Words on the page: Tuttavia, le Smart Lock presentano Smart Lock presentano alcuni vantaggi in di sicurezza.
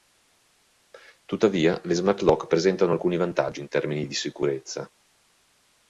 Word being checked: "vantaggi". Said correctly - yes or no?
yes